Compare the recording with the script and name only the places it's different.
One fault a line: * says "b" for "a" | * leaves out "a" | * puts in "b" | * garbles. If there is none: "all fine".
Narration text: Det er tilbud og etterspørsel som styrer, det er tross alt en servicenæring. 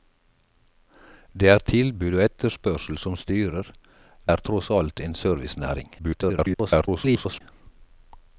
* leaves out "det"
* garbles